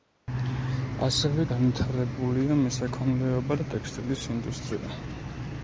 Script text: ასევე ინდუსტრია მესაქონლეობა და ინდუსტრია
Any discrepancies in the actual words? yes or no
yes